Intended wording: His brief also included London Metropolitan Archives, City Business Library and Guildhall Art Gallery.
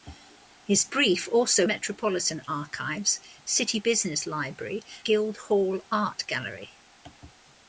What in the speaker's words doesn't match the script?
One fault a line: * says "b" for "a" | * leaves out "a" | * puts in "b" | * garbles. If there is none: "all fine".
* leaves out "included London"
* leaves out "and"